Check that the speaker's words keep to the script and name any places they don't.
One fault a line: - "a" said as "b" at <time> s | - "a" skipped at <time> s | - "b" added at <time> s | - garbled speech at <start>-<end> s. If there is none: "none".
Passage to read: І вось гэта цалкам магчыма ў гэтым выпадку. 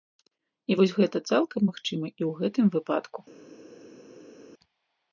- "і" added at 2.1 s